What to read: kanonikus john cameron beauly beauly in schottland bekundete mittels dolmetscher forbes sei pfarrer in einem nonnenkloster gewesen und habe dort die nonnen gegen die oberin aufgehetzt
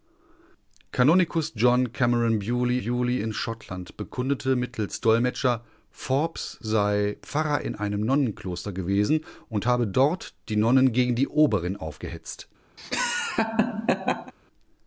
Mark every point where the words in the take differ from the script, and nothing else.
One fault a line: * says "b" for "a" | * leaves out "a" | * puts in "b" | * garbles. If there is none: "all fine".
all fine